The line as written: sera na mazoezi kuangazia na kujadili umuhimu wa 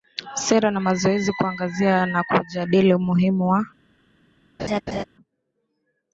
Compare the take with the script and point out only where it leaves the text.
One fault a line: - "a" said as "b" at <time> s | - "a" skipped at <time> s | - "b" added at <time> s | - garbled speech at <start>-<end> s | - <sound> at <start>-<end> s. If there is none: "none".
- laugh at 4.6-5.0 s